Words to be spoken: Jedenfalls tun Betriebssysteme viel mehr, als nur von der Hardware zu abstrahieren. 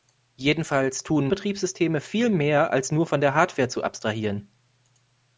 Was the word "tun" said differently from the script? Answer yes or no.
no